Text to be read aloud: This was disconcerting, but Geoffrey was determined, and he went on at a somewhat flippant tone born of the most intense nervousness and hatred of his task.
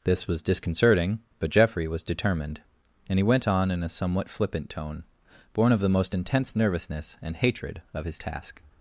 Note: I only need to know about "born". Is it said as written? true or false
true